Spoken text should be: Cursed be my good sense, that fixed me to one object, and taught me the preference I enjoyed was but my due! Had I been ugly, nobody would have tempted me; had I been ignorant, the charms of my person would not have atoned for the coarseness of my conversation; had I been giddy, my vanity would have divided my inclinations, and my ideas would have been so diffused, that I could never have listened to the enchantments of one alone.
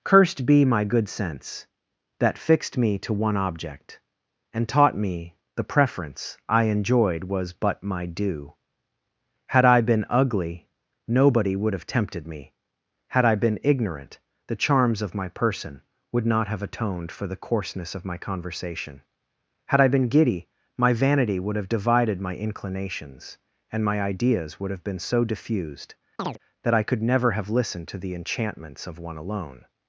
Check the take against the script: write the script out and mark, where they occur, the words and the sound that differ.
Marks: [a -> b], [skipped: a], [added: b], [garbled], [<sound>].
Cursed be my good sense, that fixed me to one object, and taught me the preference I enjoyed was but my due! Had I been ugly, nobody would have tempted me; had I been ignorant, the charms of my person would not have atoned for the coarseness of my conversation; had I been giddy, my vanity would have divided my inclinations, and my ideas would have been so diffused, [chirp] that I could never have listened to the enchantments of one alone.